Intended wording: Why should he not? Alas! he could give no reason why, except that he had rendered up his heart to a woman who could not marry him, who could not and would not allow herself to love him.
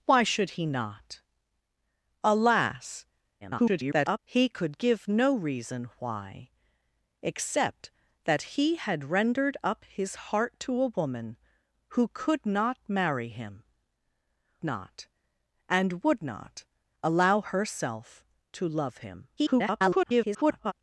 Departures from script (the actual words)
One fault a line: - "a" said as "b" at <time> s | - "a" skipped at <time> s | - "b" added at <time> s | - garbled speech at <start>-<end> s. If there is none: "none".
- garbled speech at 3.4-4.2 s
- "who could" skipped at 13.6 s
- garbled speech at 19.4-20.7 s